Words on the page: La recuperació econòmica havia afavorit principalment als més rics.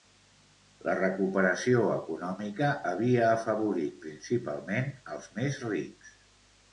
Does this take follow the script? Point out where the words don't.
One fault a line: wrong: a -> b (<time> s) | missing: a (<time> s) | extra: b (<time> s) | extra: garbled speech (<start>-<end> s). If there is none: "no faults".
no faults